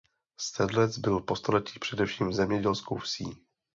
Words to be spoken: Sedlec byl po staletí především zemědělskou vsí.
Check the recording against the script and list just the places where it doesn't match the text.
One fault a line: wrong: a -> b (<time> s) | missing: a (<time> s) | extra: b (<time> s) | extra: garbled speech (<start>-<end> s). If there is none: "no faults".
no faults